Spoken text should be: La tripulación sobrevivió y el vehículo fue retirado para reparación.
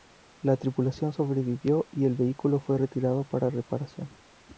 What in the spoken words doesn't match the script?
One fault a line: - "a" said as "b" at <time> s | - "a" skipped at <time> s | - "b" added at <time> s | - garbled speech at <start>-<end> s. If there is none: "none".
none